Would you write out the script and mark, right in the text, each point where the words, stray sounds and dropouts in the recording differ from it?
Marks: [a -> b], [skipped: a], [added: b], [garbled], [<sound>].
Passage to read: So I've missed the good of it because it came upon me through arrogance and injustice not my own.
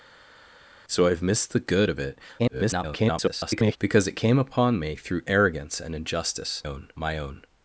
So I've missed the good of it [garbled] because it came upon me through arrogance and injustice [not -> own] my own.